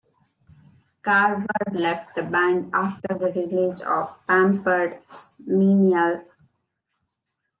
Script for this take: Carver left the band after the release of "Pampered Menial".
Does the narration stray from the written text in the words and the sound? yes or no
no